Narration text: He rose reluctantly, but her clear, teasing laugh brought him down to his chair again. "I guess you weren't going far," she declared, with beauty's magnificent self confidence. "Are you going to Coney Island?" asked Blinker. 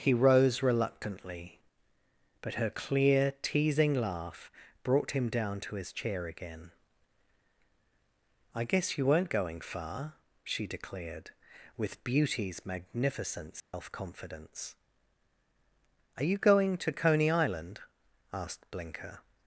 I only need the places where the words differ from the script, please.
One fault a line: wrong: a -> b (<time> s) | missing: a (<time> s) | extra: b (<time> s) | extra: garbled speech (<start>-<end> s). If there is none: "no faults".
no faults